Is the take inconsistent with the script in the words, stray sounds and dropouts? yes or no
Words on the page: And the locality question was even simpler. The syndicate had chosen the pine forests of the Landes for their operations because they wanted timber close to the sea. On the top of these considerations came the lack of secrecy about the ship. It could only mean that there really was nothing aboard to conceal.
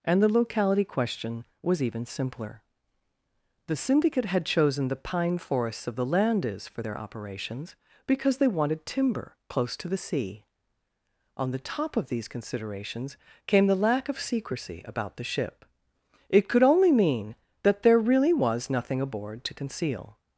no